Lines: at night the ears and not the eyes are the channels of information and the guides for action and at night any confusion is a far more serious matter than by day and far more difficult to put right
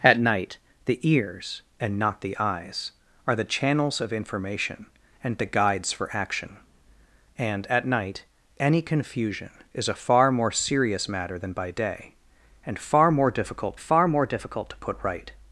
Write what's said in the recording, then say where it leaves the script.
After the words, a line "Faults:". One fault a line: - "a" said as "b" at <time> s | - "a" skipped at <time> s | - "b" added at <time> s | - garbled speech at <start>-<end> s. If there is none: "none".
at night the ears and not the eyes are the channels of information and the guides for action and at night any confusion is a far more serious matter than by day and far more difficult far more difficult to put right
Faults:
- "far more difficult" added at 13.8 s